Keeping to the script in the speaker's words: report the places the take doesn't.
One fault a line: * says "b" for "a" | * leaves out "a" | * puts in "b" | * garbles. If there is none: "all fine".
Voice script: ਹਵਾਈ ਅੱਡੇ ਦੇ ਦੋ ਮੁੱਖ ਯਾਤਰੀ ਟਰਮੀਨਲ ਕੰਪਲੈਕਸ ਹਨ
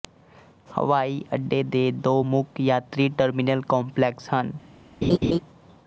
all fine